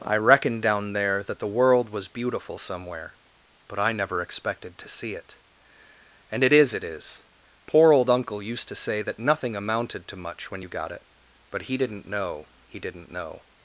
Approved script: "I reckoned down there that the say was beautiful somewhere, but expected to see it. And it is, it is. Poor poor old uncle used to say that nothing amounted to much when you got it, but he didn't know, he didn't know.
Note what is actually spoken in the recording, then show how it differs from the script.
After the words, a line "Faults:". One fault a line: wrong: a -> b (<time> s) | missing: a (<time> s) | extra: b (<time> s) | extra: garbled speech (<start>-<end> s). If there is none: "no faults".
"I reckoned down there that the world was beautiful somewhere, but I never expected to see it. And it is, it is. Poor old uncle used to say that nothing amounted to much when you got it, but he didn't know, he didn't know.
Faults:
wrong: say -> world (1.5 s)
extra: I never (3.8 s)
missing: poor (7.9 s)